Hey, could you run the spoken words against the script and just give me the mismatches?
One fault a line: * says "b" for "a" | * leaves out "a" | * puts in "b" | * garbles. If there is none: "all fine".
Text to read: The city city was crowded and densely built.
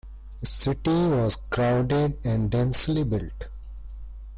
* leaves out "city"